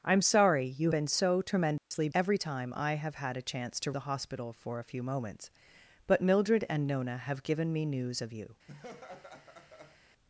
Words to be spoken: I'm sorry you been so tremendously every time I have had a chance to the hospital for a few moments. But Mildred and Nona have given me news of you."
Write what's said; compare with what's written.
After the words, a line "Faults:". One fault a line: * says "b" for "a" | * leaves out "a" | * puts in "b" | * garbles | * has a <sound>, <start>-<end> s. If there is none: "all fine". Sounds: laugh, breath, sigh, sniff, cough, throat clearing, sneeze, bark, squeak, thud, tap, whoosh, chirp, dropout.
I'm sorry you been so tremendously every time I have had a chance to the hospital for a few moments. But Mildred and Nona have given me news of you."
Faults:
* has a dropout, 1.8-1.9 s
* has a laugh, 8.7-10.0 s